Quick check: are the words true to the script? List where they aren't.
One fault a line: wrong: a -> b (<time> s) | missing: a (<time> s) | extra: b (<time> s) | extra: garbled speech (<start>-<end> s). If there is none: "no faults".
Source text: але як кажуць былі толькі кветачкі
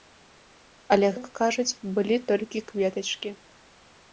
no faults